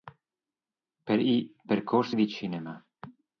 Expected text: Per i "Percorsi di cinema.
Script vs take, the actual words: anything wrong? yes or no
no